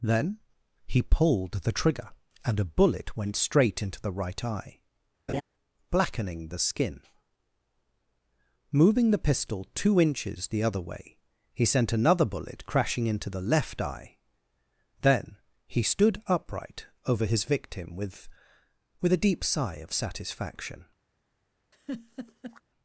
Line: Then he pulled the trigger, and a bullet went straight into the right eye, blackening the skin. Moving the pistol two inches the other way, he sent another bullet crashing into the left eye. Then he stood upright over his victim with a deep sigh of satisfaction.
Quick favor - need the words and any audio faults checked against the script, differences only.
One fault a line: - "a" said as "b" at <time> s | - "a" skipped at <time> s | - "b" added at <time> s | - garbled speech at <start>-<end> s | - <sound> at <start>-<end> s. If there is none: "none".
- laugh at 5.3-5.4 s
- "with" added at 19.0 s
- laugh at 21.7-22.6 s